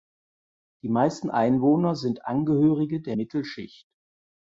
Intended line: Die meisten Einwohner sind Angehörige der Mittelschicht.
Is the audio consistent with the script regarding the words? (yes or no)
yes